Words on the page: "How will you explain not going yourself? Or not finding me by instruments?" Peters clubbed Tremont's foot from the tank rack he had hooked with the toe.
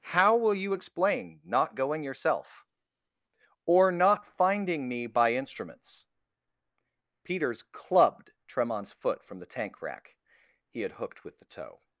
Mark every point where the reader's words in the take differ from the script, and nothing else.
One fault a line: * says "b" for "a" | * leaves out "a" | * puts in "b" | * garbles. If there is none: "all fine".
all fine